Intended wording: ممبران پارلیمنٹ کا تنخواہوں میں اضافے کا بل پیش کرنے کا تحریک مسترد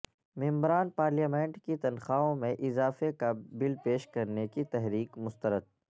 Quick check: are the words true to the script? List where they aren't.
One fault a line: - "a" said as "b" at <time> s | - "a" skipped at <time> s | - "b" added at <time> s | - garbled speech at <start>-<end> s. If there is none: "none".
- "کا" said as "کی" at 1.6 s
- "کا" said as "کی" at 4.5 s